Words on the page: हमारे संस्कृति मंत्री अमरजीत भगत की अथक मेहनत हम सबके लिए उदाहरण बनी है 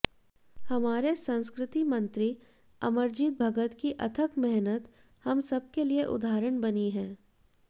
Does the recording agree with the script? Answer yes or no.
yes